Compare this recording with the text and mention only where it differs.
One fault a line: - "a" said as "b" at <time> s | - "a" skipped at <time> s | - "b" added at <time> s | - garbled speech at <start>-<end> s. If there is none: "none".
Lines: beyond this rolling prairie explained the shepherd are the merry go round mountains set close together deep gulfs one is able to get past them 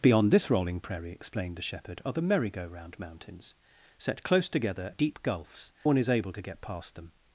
none